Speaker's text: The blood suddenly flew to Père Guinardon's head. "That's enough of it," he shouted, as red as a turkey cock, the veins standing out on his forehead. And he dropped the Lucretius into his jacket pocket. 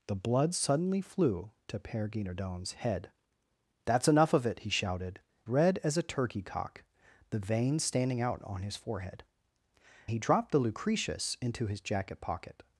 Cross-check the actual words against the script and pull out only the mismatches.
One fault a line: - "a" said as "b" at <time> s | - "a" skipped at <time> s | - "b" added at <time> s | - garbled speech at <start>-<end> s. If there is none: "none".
- "as" skipped at 5.2 s
- "And" skipped at 9.2 s